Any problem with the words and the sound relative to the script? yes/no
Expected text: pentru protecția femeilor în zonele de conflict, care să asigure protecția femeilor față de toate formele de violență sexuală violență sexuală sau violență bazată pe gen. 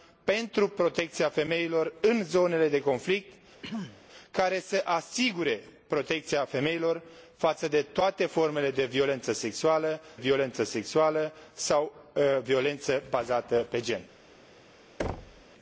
yes